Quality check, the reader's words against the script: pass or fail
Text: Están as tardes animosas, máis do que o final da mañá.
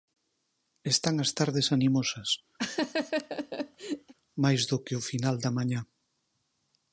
pass